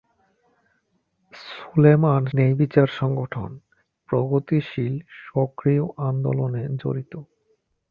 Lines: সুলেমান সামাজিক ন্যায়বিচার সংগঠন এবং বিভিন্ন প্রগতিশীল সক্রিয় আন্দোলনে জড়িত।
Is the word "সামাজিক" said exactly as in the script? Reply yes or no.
no